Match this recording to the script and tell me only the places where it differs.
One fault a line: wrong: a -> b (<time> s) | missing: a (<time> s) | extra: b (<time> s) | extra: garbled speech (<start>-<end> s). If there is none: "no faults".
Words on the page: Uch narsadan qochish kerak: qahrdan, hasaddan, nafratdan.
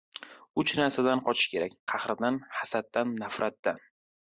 no faults